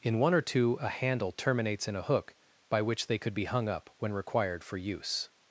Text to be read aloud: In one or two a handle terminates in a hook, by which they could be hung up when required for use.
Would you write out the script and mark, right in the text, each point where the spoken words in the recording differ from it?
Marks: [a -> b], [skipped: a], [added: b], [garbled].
In one or two a handle terminates in a hook, by which they could be hung up when required for use.